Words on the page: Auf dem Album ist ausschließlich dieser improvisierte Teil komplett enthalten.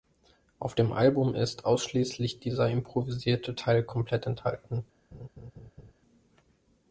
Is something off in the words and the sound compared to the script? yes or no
yes